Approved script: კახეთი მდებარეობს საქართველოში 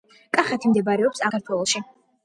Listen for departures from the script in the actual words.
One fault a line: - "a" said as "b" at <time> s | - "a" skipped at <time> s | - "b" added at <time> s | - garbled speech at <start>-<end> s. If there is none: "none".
none